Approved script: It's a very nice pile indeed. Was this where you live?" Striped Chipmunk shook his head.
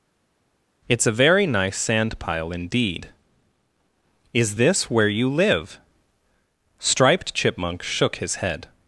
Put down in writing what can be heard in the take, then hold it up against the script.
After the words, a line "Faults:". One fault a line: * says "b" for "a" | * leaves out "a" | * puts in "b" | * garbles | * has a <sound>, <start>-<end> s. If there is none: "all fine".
It's a very nice sand pile indeed. Is this where you live?" Striped Chipmunk shook his head.
Faults:
* puts in "sand"
* says "Is" for "Was"